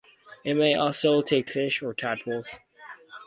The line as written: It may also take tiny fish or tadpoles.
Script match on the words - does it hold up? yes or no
no